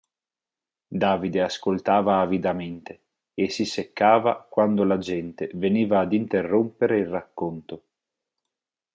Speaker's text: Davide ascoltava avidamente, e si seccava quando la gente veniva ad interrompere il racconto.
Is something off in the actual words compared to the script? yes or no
no